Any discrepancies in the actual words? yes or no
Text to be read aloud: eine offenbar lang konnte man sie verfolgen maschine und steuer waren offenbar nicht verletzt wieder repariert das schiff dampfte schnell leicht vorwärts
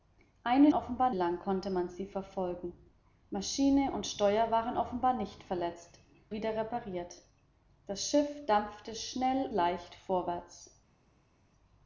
no